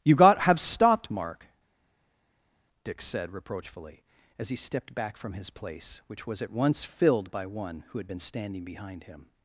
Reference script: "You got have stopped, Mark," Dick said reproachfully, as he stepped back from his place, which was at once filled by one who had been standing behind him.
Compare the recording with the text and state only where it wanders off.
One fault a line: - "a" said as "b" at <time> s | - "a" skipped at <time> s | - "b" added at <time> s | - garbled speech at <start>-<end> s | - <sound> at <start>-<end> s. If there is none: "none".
none